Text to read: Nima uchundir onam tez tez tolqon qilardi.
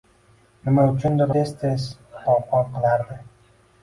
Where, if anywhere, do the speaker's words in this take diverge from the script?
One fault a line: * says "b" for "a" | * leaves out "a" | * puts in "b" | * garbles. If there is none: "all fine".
* leaves out "onam"